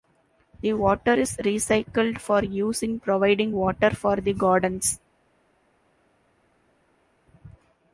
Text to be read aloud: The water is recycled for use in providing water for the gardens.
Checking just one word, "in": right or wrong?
right